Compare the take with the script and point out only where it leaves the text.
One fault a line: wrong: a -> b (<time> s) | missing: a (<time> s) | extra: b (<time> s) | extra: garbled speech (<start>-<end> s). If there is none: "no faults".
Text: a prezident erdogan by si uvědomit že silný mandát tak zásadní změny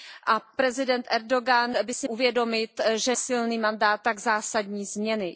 no faults